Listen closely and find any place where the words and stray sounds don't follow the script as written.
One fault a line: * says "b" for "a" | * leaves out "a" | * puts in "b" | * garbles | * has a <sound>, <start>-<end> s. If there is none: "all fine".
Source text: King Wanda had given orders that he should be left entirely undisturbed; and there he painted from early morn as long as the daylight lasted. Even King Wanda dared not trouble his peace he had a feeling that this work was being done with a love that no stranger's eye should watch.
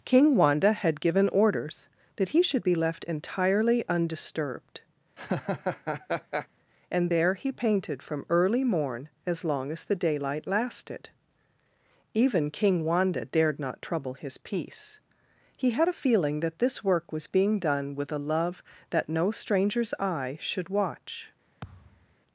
* has a laugh, 5.2-6.5 s
* has a thud, 21.6-22.2 s